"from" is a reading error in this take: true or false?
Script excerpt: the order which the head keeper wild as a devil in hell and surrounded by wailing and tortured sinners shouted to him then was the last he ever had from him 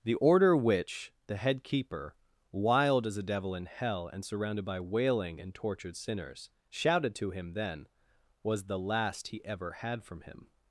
false